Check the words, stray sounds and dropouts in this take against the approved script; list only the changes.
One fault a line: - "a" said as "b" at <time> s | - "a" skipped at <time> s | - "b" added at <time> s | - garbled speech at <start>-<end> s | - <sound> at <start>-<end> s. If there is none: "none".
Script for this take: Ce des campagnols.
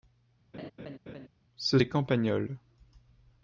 - laugh at 0.5-1.3 s